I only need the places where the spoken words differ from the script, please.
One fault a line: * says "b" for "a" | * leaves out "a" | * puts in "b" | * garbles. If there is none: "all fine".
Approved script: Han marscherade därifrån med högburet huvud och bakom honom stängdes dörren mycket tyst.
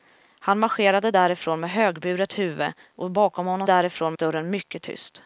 * says "därifrån" for "stängdes"